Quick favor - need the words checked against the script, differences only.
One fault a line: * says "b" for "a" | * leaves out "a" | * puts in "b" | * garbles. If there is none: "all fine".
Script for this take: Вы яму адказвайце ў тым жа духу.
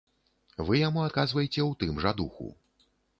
all fine